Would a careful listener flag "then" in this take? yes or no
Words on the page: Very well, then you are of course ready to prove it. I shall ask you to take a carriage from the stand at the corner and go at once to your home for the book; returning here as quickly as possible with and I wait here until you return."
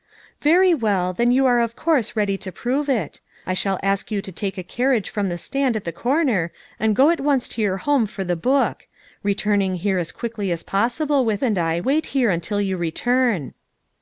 no